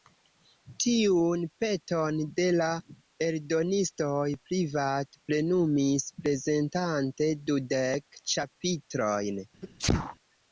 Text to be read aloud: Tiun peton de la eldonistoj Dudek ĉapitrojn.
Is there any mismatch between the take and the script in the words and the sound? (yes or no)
yes